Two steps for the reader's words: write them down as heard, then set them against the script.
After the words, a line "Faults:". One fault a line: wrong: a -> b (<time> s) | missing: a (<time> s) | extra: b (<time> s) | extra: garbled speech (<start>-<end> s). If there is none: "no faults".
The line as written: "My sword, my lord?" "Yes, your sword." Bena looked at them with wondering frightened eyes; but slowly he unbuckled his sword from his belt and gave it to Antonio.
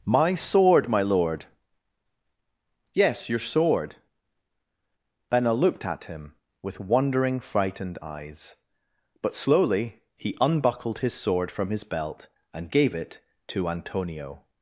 "My sword, my lord?" "Yes, your sword." Bena looked at him with wondering frightened eyes; but slowly he unbuckled his sword from his belt and gave it to Antonio.
Faults:
wrong: them -> him (6.0 s)